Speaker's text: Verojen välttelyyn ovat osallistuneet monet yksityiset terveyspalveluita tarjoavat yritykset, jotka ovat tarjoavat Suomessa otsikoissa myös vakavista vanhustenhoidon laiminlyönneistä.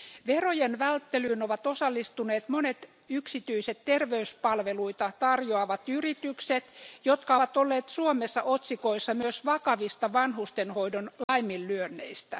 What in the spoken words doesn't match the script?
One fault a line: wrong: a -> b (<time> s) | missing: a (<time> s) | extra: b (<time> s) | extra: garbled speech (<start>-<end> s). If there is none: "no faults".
wrong: tarjoavat -> olleet (7.6 s)